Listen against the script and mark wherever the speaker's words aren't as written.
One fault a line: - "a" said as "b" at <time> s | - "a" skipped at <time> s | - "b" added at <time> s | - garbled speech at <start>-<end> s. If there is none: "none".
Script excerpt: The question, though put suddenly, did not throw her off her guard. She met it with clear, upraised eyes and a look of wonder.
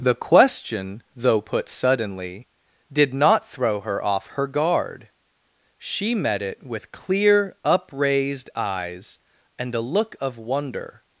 none